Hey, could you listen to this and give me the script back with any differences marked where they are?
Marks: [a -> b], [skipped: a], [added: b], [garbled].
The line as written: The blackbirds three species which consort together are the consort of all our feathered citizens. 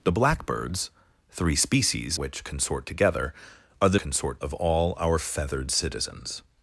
The blackbirds three species which consort together are the consort of all our feathered citizens.